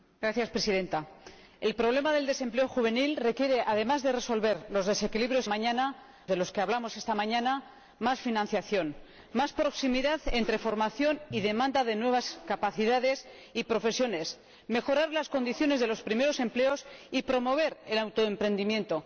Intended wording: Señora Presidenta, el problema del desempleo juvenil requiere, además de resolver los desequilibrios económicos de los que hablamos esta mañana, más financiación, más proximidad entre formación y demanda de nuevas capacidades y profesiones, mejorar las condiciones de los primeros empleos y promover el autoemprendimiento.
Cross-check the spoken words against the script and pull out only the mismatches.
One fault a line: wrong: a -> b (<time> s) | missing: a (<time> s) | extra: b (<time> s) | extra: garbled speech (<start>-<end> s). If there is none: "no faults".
wrong: económicos -> mañana (5.5 s)